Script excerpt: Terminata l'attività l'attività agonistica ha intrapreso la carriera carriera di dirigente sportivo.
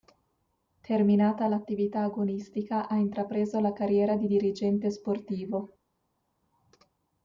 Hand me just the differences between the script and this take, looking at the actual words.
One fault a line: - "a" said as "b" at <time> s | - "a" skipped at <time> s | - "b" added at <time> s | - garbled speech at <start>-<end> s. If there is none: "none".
- "l'attività" skipped at 2.0 s
- "carriera" skipped at 4.2 s